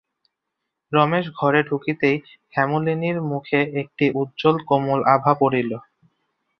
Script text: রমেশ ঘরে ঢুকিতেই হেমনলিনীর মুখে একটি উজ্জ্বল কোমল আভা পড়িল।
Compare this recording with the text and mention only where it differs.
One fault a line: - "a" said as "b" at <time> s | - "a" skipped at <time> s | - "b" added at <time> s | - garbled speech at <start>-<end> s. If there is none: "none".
none